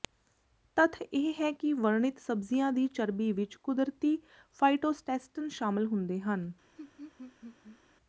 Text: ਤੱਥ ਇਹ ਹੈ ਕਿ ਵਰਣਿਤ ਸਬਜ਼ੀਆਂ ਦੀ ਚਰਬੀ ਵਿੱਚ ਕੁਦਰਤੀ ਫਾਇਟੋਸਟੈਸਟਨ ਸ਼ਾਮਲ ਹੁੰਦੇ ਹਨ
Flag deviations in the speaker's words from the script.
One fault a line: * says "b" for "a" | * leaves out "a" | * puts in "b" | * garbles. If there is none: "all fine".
all fine